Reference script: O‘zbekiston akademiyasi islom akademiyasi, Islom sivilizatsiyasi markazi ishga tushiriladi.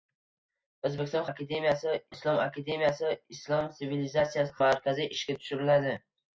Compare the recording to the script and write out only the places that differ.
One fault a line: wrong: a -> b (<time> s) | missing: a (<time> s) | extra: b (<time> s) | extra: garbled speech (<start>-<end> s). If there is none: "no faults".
no faults